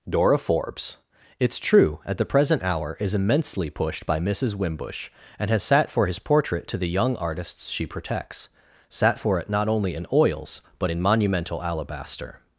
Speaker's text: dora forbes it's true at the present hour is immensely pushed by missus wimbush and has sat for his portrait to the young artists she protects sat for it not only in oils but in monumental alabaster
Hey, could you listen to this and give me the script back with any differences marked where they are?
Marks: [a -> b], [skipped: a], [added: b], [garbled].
dora forbes it's true at the present hour is immensely pushed by missus wimbush and has sat for his portrait to the young artists she protects sat for it not only in oils but in monumental alabaster